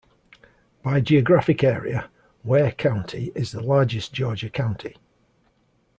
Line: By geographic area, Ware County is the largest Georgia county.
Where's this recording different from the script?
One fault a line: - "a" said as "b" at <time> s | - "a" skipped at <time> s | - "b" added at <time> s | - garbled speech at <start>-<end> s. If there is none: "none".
none